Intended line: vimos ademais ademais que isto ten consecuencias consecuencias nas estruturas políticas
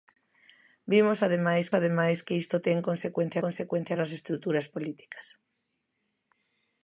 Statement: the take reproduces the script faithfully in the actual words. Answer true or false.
true